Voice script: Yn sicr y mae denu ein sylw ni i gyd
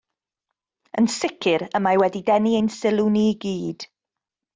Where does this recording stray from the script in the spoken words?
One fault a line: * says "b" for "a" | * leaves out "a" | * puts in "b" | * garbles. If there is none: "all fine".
* puts in "wedi"